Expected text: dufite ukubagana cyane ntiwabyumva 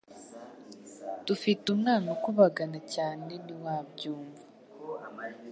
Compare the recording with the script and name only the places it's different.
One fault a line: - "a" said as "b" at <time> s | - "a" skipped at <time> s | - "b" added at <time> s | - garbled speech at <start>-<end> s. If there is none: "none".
- "umwana" added at 1.7 s